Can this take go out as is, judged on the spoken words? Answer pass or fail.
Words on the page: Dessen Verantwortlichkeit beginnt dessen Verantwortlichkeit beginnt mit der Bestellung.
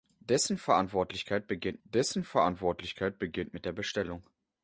pass